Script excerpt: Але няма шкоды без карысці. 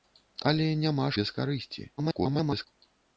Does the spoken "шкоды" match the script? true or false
false